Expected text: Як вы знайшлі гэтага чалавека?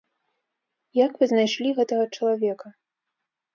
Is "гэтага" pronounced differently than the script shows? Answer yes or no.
no